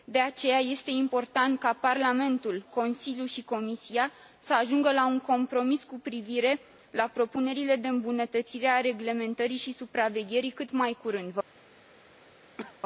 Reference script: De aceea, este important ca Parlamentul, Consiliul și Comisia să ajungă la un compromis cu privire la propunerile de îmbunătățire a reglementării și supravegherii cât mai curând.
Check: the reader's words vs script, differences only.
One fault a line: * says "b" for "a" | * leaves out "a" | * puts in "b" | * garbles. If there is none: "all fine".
all fine